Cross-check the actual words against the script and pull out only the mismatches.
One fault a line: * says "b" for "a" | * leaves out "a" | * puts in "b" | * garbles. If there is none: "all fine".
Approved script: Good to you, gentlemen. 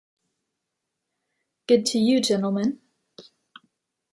all fine